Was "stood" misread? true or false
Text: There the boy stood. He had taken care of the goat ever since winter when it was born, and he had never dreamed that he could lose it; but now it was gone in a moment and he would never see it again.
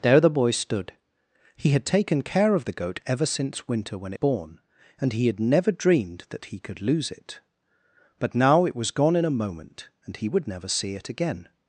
false